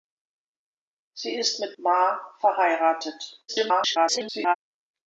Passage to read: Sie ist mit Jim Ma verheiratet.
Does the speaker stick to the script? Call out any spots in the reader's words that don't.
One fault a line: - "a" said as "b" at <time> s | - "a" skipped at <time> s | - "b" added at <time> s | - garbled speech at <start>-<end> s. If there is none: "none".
- "Jim" skipped at 1.7 s
- garbled speech at 3.5-4.6 s